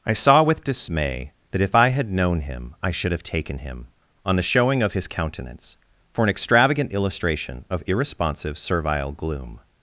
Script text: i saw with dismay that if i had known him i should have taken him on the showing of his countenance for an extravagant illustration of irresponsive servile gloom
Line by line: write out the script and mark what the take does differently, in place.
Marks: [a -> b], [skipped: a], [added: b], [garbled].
i saw with dismay that if i had known him i should have taken him on the showing of his countenance for an extravagant illustration of irresponsive servile gloom